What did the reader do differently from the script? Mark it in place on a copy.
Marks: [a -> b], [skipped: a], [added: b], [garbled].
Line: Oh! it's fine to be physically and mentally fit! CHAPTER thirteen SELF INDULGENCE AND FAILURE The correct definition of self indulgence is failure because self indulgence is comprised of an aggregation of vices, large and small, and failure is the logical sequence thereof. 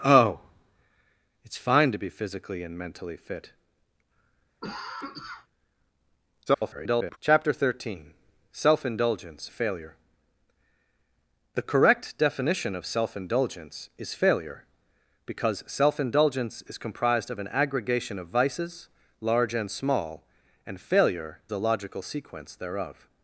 Oh! it's fine to be physically and mentally fit! [garbled] CHAPTER thirteen SELF INDULGENCE [skipped: AND] FAILURE The correct definition of self indulgence is failure because self indulgence is comprised of an aggregation of vices, large and small, and failure [skipped: is] the logical sequence thereof.